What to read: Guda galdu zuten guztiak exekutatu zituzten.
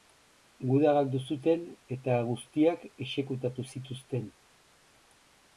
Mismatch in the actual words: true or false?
true